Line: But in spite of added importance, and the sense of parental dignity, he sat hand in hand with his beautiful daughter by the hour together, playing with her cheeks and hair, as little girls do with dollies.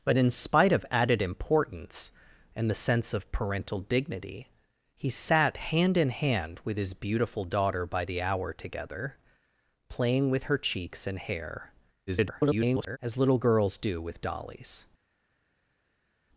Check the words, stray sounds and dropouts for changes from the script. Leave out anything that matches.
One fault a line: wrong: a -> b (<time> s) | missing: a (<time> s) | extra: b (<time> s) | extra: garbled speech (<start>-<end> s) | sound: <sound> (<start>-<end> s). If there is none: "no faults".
extra: garbled speech (12.1-13.0 s)